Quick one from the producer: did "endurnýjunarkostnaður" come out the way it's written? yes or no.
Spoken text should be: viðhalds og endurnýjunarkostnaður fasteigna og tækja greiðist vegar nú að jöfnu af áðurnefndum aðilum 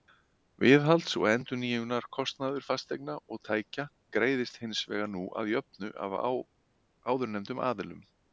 yes